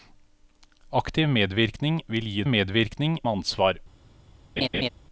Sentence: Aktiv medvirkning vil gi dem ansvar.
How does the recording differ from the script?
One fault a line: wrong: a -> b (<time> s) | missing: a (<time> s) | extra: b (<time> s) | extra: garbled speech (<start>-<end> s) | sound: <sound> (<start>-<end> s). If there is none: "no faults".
wrong: dem -> medvirkning (2.5 s)
sound: laugh (4.6-4.9 s)